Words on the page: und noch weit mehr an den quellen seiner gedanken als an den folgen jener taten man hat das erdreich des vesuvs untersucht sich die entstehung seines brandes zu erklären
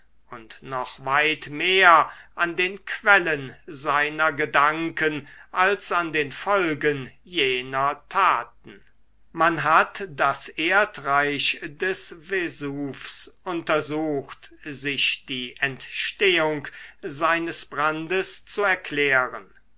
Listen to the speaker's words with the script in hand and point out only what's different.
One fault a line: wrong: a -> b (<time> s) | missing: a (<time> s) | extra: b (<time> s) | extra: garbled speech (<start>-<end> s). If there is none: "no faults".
no faults